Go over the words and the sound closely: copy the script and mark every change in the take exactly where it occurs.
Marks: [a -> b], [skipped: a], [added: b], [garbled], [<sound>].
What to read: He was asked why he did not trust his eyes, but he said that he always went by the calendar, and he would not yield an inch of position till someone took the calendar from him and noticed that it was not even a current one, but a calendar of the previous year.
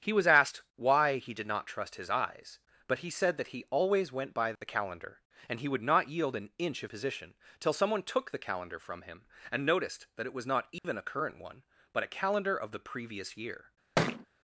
He was asked why he did not trust his eyes, but he said that he always went by the calendar, and he would not yield an inch of position till someone took the calendar from him and noticed that it was not even [dropout] a current one, but a calendar of the previous year. [thud]